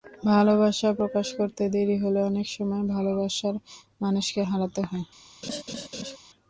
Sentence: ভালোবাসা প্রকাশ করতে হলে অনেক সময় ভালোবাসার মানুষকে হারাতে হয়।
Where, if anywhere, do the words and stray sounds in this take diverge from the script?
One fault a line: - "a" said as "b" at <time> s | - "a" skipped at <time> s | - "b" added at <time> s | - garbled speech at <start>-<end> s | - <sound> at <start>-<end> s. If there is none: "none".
- "দেরি" added at 1.7 s
- laugh at 5.4-6.2 s